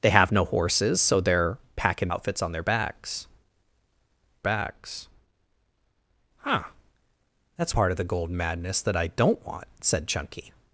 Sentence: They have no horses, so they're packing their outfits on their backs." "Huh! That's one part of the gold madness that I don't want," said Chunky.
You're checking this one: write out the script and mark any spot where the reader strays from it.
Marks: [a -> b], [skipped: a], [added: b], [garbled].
They have no horses, so they're packing [skipped: their] outfits on their backs." [added: backs] "Huh! That's [skipped: one] part of the gold madness that I don't want," said Chunky.